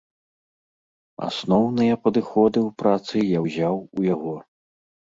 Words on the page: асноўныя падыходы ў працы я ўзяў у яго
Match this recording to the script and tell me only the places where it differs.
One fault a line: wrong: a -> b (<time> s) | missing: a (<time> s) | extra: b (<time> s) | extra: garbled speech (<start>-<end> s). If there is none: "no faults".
no faults